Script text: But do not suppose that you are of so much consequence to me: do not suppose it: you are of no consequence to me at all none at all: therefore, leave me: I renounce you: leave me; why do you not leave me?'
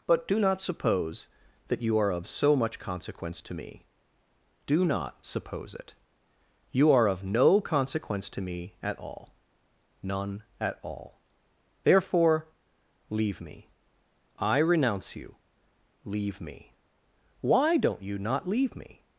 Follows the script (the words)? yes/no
no